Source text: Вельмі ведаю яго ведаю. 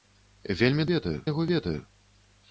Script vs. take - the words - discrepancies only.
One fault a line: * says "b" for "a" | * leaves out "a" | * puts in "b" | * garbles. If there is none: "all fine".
all fine